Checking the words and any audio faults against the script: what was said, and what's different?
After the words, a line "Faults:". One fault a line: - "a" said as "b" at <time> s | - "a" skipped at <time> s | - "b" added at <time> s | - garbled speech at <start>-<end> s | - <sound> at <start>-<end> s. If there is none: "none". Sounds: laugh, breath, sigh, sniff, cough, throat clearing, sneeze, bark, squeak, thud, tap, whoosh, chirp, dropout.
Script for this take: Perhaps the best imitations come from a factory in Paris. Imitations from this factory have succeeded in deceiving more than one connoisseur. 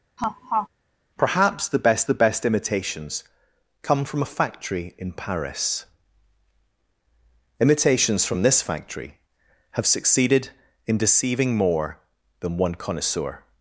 Perhaps the best the best imitations come from a factory in Paris. Imitations from this factory have succeeded in deceiving more than one connoisseur.
Faults:
- laugh at 0.2-0.7 s
- "the best" added at 2.0 s